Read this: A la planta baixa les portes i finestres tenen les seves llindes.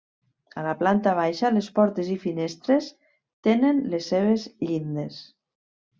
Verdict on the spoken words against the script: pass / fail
pass